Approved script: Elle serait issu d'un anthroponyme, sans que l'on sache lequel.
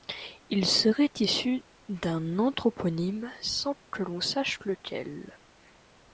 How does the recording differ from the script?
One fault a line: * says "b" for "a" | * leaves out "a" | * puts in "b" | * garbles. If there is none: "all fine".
* says "Il" for "Elle"